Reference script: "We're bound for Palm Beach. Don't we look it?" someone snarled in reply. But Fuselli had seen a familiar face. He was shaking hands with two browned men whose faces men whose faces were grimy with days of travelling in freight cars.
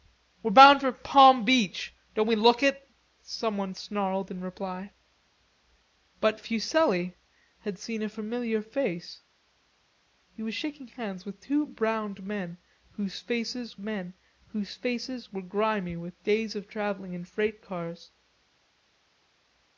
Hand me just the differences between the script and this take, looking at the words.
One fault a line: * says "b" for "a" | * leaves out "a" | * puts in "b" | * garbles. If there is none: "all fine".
all fine